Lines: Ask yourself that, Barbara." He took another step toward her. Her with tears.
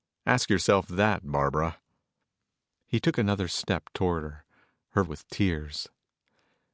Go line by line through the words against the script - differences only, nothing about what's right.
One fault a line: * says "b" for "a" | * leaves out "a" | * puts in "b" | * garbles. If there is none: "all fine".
all fine